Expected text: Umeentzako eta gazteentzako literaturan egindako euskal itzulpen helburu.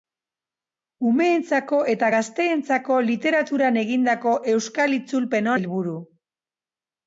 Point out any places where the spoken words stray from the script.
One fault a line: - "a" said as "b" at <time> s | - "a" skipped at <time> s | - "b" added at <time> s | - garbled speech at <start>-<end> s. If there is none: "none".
none